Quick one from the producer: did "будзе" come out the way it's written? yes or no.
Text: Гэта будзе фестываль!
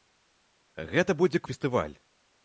yes